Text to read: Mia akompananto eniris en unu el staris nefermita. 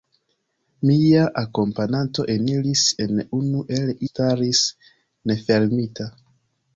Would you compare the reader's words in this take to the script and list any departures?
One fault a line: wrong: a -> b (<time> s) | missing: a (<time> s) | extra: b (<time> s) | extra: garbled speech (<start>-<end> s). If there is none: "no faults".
no faults